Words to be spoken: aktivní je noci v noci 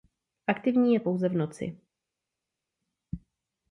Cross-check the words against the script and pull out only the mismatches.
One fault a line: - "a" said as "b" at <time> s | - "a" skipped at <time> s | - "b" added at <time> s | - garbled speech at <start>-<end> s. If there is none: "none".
- "noci" said as "pouze" at 1.0 s